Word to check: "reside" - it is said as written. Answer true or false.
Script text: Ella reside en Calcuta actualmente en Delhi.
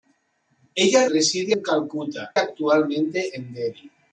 true